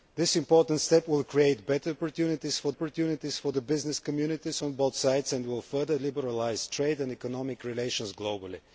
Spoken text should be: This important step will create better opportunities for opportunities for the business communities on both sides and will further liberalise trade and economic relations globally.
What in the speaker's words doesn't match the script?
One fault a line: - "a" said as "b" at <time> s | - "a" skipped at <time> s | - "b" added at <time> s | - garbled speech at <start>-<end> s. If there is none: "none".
none